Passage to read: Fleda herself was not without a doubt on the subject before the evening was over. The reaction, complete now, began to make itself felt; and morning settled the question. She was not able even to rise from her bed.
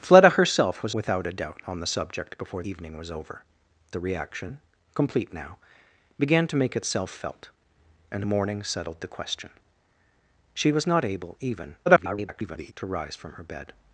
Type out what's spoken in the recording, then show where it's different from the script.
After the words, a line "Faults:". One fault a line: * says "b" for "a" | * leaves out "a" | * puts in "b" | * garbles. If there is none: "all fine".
Fleda herself was without a doubt on the subject before evening was over. The reaction, complete now, began to make itself felt; and morning settled the question. She was not able even [garbled] to rise from her bed.
Faults:
* leaves out "not"
* leaves out "the"
* garbles